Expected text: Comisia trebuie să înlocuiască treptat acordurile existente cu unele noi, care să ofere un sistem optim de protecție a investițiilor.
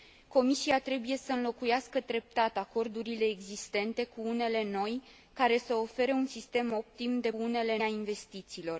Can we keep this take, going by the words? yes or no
no